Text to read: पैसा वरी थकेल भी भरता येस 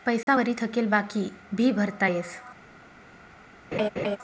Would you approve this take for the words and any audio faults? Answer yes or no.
no